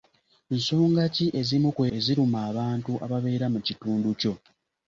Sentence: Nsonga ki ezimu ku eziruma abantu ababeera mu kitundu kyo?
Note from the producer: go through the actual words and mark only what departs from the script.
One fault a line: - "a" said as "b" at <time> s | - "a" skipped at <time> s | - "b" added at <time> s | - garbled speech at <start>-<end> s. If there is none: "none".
none